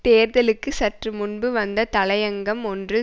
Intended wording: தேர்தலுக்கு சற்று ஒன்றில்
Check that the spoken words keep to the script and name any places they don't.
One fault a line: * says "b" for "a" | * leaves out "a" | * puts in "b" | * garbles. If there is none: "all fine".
* puts in "முன்பு வந்த தலையங்கம்"